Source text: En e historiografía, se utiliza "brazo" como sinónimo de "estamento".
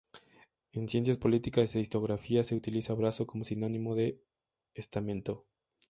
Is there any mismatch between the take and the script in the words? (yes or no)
yes